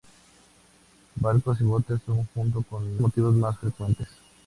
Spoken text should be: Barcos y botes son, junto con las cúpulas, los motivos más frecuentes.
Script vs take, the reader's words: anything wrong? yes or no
yes